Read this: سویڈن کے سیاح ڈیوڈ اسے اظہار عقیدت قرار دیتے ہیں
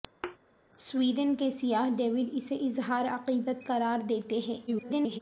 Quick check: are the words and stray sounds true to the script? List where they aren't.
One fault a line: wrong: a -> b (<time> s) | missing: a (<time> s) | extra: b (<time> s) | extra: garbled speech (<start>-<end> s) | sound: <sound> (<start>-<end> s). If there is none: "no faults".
sound: thud (0.2-0.4 s)
extra: garbled speech (4.7-5.2 s)